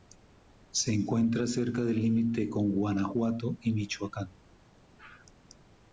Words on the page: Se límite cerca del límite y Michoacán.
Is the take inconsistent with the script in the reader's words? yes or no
yes